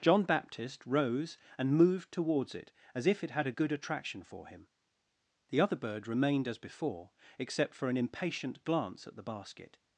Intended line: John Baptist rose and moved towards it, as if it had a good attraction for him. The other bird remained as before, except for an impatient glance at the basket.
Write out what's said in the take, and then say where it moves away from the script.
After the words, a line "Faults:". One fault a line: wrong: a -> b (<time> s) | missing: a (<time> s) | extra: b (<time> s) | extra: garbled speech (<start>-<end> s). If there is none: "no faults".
John Baptist rose and moved towards it, as if it had a good attraction for him. The other bird remained as before, except for an impatient glance at the basket.
Faults:
no faults